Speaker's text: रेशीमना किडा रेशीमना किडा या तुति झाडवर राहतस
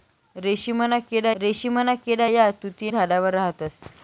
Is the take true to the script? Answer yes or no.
yes